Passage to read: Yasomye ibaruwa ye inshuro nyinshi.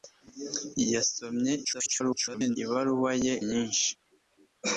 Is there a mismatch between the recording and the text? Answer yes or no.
yes